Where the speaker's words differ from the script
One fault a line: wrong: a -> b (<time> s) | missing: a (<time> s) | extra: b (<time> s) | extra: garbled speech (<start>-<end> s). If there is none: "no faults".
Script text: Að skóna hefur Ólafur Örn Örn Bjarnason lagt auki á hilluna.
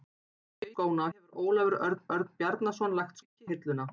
no faults